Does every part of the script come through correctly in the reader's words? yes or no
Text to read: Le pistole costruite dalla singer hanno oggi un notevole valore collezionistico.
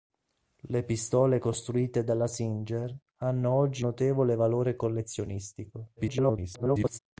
no